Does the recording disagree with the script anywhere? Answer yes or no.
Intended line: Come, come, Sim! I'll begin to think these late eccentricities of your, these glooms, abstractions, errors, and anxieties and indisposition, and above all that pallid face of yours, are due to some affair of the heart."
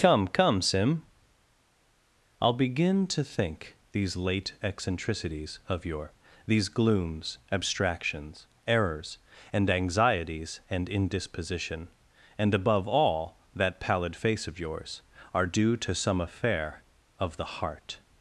no